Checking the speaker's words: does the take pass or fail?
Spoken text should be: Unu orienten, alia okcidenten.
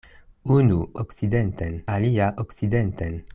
fail